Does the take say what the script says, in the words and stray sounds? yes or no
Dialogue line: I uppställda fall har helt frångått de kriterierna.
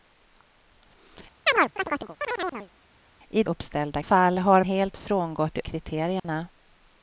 no